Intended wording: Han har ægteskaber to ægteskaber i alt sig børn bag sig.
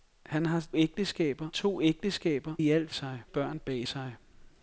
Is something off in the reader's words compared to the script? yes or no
no